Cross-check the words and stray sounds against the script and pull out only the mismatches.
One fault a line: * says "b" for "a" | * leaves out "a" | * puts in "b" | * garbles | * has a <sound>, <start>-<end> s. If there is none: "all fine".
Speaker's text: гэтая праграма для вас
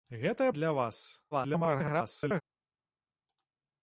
* leaves out "праграма"
* garbles